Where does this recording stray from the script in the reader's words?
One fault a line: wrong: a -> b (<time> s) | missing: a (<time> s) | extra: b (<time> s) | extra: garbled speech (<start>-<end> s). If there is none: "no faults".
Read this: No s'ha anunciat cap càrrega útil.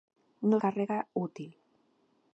missing: s'ha anunciat cap (0.6 s)